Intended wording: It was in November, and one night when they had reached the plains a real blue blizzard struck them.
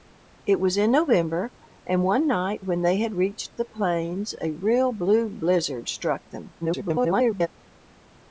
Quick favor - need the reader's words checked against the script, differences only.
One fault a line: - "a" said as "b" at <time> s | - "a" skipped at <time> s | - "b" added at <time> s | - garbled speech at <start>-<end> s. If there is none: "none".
- garbled speech at 6.6-7.5 s